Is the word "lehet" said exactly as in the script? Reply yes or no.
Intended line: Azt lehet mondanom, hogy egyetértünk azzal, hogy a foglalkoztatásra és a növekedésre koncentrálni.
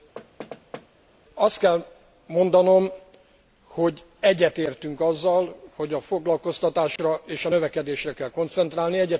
no